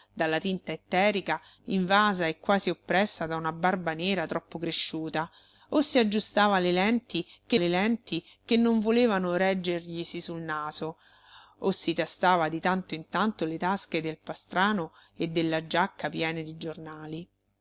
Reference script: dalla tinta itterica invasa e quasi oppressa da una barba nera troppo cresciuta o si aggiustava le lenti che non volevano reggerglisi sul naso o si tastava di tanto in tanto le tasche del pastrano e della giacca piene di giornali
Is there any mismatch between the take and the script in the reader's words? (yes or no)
yes